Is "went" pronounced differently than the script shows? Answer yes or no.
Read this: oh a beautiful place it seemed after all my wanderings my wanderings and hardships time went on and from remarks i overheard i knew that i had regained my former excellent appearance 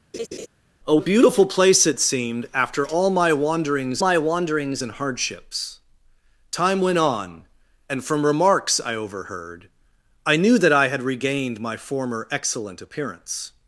no